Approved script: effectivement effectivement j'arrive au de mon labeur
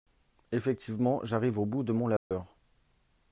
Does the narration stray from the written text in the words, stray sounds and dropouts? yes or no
yes